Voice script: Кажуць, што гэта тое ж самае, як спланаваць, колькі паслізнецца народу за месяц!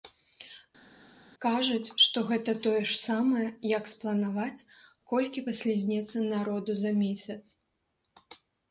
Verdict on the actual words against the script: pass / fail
pass